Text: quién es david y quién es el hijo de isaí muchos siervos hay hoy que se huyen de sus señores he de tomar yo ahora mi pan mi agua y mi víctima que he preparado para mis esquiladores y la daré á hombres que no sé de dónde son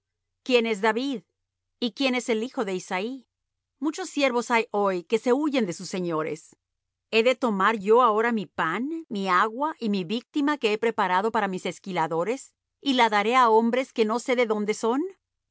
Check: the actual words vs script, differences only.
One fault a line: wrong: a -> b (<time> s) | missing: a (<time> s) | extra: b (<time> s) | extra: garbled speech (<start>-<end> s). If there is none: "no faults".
no faults